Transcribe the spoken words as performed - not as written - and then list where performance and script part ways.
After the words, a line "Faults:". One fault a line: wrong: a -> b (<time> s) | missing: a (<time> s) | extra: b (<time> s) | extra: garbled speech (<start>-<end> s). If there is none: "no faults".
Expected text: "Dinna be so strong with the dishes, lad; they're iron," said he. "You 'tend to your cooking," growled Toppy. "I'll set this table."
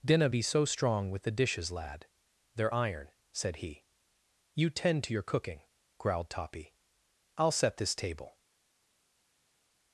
"Dinna be so strong with the dishes, lad; they're iron," said he. "You 'tend to your cooking," growled Toppy. "I'll set this table."
Faults:
no faults